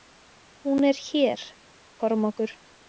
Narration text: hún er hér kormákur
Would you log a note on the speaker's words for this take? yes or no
no